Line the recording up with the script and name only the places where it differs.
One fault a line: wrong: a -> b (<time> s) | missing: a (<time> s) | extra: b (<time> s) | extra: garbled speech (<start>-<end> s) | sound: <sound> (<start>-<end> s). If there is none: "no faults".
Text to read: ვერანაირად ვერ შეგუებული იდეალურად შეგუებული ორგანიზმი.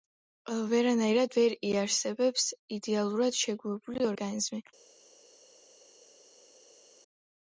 wrong: შეგუებული -> იარსებებს (1.7 s)